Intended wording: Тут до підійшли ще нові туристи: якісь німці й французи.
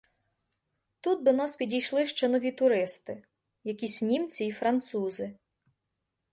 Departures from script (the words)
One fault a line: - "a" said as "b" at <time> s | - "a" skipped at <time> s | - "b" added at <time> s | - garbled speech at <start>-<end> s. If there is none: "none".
- "нас" added at 1.3 s